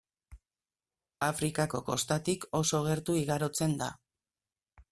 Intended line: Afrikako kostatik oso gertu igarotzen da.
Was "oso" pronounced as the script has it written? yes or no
yes